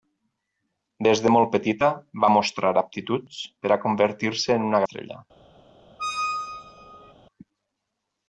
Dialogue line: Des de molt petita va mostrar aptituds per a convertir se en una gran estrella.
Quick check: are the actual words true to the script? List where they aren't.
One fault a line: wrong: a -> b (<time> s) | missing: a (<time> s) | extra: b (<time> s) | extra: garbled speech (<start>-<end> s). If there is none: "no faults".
missing: gran (4.8 s)